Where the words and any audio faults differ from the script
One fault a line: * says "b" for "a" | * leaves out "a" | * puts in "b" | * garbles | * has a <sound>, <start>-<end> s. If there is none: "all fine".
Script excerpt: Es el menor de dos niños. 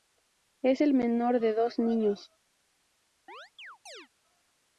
* has a chirp, 3.3-4.1 s